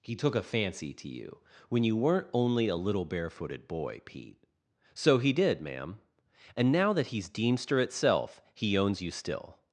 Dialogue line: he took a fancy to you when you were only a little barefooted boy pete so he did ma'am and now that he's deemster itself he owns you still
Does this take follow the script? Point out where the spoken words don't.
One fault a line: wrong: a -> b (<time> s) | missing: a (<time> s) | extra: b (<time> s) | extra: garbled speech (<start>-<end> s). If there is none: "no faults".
wrong: were -> weren't (1.9 s)